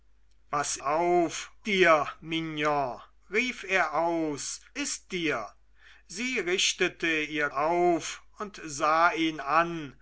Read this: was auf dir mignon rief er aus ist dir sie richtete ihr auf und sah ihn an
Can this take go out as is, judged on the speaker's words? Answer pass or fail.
pass